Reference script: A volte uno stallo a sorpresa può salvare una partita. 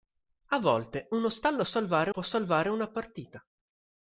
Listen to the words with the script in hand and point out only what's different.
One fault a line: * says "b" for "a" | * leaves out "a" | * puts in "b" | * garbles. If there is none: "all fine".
* says "salvare" for "sorpresa"